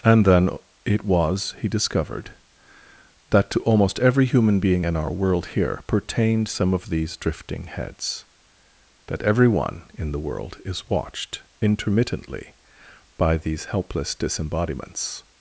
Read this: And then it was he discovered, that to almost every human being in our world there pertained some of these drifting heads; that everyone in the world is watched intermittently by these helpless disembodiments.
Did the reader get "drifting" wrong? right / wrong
right